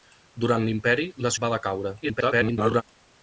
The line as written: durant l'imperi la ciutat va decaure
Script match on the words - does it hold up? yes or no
no